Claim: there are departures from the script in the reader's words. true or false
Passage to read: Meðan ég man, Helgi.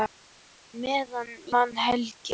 true